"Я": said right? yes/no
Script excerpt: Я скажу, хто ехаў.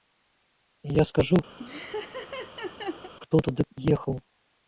yes